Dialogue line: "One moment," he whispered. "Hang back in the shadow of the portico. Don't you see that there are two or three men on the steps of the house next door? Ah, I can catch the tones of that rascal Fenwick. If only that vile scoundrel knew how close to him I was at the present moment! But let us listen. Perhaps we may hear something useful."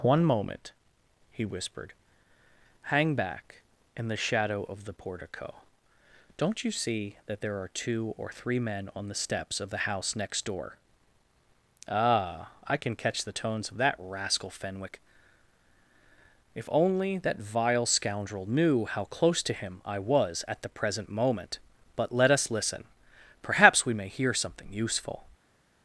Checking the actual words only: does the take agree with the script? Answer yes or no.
yes